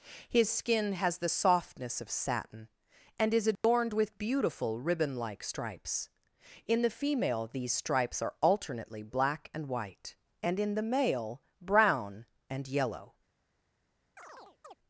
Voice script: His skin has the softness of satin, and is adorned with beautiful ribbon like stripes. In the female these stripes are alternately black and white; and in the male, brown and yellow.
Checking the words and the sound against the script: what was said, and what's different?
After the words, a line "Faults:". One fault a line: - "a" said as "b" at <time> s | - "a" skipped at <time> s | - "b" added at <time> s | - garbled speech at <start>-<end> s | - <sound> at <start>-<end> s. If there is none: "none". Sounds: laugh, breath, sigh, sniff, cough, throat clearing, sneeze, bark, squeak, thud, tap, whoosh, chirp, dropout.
His skin has the softness of satin, and is adorned with beautiful ribbon like stripes. In the female these stripes are alternately black and white; and in the male, brown and yellow.
Faults:
- dropout at 3.6-3.6 s
- chirp at 14.2-14.8 s